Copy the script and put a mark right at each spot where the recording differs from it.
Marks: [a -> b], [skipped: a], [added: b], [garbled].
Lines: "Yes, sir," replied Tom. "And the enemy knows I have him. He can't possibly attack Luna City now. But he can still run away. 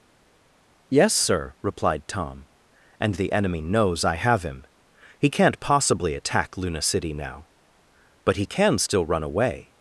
"Yes, sir," replied Tom. "And the enemy knows I have him. He can't possibly attack Luna City now. But he can still run away.